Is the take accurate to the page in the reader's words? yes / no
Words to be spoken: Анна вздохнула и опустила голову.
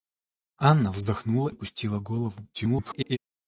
no